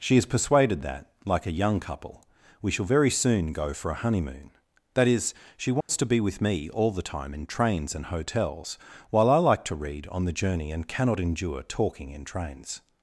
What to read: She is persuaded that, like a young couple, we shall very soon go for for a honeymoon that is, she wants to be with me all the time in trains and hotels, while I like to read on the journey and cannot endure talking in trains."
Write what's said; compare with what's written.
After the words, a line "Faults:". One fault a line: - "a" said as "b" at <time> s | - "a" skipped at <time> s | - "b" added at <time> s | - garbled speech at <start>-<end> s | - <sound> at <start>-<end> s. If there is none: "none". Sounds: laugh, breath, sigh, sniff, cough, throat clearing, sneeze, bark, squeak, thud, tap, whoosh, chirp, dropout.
She is persuaded that, like a young couple, we shall very soon go for a honeymoon that is, she wants to be with me all the time in trains and hotels, while I like to read on the journey and cannot endure talking in trains."
Faults:
- "for" skipped at 3.9 s
- dropout at 5.8-5.9 s